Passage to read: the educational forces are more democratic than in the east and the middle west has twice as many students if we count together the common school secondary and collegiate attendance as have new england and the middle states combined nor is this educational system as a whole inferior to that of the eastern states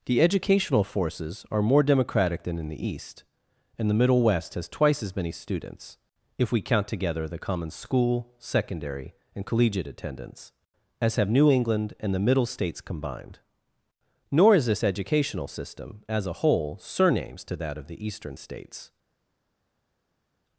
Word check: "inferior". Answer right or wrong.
wrong